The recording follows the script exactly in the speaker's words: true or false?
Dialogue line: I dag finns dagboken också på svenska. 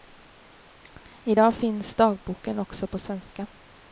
true